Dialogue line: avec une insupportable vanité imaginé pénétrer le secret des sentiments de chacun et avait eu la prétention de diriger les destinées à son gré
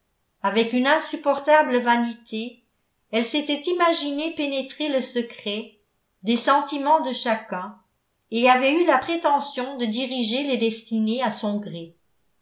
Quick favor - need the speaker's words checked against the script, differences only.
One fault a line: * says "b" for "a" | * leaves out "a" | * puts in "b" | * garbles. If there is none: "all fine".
* puts in "elle s'était"